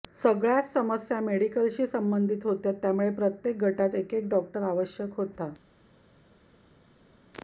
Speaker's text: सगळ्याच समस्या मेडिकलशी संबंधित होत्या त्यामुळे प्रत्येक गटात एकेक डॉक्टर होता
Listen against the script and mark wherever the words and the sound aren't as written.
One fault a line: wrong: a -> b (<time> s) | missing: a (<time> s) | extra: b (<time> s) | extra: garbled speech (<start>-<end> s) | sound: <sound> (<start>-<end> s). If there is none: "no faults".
extra: आवश्यक (4.6 s)